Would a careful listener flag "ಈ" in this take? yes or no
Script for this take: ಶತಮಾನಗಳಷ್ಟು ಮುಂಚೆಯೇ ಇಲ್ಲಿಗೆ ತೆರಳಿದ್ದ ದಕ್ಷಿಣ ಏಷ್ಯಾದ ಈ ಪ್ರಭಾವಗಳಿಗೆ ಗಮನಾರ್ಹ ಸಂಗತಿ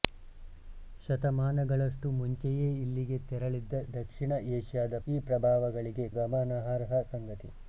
no